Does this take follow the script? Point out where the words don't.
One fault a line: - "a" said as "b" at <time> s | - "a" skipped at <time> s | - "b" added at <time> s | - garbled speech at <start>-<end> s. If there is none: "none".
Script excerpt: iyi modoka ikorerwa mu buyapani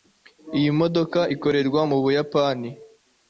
none